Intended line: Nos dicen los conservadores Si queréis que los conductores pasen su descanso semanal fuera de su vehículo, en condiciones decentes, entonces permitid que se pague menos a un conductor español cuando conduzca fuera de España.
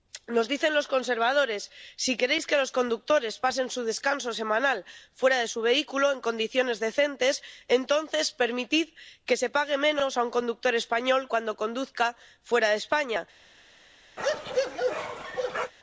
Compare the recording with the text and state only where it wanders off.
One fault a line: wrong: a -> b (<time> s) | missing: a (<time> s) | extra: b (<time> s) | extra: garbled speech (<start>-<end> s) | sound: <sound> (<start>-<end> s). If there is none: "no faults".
sound: bark (14.2-15.7 s)